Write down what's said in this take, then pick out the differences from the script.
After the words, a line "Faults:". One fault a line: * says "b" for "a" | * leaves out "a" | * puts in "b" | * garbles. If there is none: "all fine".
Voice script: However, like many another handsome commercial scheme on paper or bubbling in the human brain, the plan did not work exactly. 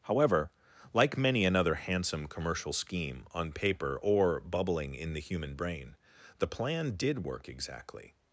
However, like many another handsome commercial scheme on paper or bubbling in the human brain, the plan did work exactly.
Faults:
* leaves out "not"